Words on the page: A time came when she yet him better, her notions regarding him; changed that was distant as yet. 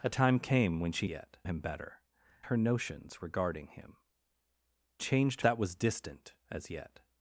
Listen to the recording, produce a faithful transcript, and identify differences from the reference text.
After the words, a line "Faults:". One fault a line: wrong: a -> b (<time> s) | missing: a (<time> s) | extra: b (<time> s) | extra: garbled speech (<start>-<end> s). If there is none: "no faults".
A time came when she yet him better, her notions regarding him; changed that was distant as yet.
Faults:
no faults